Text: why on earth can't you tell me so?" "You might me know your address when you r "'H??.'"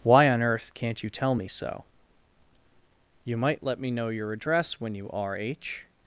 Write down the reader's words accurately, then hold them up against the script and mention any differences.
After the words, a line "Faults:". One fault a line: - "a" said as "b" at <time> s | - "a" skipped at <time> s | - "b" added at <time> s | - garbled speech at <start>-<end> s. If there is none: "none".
why on earth can't you tell me so?" "You might let me know your address when you r "'H??.'"
Faults:
- "let" added at 3.6 s